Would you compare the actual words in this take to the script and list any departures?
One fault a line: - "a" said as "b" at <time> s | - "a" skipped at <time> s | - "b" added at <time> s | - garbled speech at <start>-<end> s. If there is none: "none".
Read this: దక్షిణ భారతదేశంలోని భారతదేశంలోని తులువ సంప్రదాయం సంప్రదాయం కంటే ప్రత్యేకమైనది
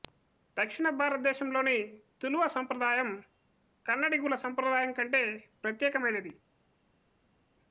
- "భారతదేశంలోని" skipped at 1.8 s
- "కన్నడిగుల" added at 3.9 s